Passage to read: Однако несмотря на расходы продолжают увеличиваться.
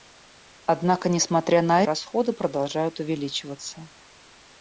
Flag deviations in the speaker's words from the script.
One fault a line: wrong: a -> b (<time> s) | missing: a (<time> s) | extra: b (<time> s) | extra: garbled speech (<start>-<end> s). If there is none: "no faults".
no faults